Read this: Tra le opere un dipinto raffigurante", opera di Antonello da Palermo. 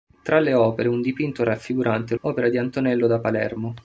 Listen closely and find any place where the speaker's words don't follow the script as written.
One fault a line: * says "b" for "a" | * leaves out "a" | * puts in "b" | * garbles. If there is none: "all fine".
all fine